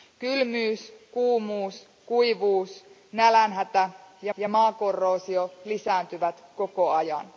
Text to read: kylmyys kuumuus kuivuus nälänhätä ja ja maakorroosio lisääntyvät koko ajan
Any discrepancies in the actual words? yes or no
no